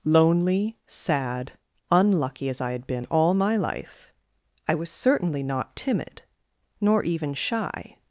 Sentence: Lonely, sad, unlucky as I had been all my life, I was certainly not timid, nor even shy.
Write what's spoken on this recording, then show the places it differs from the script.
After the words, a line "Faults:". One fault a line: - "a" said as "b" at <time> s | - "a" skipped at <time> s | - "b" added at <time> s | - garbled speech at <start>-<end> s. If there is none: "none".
Lonely, sad, unlucky as I had been all my life, I was certainly not timid, nor even shy.
Faults:
none